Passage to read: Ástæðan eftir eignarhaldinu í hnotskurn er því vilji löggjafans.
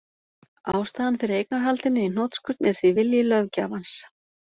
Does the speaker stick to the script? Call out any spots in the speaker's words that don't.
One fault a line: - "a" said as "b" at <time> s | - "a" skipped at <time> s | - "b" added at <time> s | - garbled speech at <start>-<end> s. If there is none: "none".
- "eftir" said as "fyrir" at 1.2 s